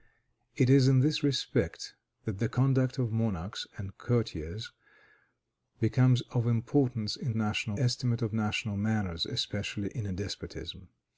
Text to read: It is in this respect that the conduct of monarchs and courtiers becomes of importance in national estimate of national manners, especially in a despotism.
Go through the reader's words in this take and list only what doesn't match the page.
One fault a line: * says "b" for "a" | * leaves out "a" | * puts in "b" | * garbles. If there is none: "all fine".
all fine